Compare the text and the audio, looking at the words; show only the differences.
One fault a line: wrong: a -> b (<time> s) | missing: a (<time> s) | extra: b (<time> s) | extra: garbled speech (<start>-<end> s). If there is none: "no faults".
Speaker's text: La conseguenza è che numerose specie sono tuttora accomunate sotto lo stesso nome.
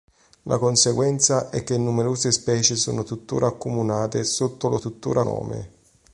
wrong: stesso -> tuttora (4.8 s)